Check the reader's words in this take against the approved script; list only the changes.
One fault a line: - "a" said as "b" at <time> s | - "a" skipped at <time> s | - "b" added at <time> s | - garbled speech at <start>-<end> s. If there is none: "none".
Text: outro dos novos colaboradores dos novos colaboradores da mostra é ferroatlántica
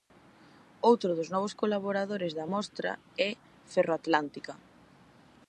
- "dos novos colaboradores" skipped at 2.3 s